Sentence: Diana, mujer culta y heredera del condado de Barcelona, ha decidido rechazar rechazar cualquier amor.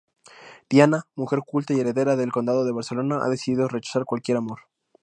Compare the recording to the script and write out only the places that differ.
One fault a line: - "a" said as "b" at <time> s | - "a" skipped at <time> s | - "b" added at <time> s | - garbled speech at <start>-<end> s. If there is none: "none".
- "rechazar" skipped at 4.0 s